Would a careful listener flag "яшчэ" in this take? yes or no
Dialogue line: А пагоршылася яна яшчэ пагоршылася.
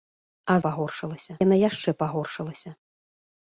no